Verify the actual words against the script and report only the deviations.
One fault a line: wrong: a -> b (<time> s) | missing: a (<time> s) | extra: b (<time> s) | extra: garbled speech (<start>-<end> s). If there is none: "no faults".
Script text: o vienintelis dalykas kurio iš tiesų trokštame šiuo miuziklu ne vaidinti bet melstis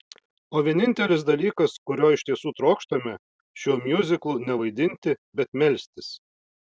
no faults